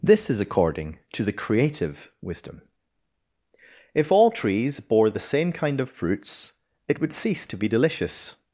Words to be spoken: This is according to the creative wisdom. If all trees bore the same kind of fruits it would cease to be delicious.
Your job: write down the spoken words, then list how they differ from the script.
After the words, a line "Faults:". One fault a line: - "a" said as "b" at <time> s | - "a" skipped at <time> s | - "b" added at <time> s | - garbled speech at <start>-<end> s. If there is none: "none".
This is according to the creative wisdom. If all trees bore the same kind of fruits it would cease to be delicious.
Faults:
none